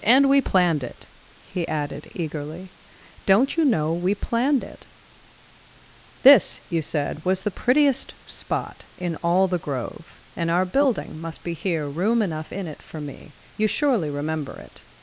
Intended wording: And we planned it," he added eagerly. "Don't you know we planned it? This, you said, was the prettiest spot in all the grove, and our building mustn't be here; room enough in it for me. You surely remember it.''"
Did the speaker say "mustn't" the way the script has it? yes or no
no